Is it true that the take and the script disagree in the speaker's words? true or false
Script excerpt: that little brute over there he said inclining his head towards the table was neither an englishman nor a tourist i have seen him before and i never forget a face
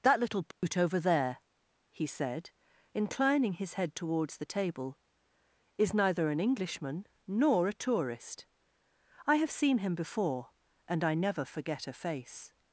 true